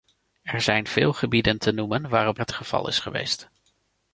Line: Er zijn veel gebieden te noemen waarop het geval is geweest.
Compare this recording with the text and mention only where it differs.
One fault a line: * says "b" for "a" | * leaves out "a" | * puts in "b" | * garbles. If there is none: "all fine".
all fine